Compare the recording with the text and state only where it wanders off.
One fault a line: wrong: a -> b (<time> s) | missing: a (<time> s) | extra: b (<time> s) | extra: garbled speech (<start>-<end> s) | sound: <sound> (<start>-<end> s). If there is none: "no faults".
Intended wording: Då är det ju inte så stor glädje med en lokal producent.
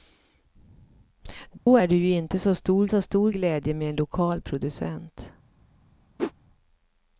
sound: dropout (1.6-1.7 s)
extra: så stor (2.9 s)
sound: whoosh (6.2-6.3 s)